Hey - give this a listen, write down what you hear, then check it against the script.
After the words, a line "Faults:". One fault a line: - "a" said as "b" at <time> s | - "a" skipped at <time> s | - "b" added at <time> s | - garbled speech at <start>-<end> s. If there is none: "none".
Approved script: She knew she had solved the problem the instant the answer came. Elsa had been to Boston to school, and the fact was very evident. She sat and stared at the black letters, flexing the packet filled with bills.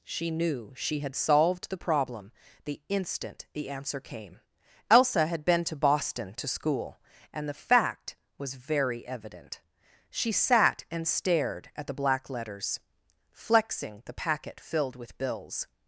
She knew she had solved the problem the instant the answer came. Elsa had been to Boston to school, and the fact was very evident. She sat and stared at the black letters, flexing the packet filled with bills.
Faults:
none